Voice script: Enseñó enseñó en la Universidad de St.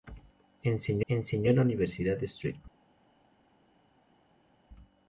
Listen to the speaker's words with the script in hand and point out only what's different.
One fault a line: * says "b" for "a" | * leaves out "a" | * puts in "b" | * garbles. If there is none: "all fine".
all fine